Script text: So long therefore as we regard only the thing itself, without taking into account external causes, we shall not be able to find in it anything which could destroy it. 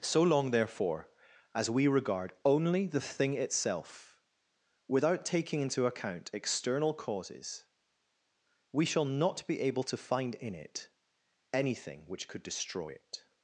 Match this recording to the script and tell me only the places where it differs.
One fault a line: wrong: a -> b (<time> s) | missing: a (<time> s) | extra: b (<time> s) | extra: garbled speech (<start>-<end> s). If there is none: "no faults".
no faults